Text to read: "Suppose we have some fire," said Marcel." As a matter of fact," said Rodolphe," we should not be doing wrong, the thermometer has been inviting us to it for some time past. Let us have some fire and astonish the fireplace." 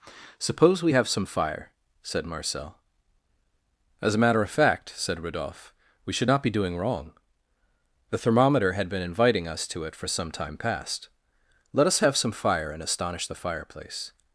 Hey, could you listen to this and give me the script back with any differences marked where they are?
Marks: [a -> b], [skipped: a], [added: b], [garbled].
"Suppose we have some fire," said Marcel." As a matter of fact," said Rodolphe," we should not be doing wrong, the thermometer [has -> had] been inviting us to it for some time past. Let us have some fire and astonish the fireplace."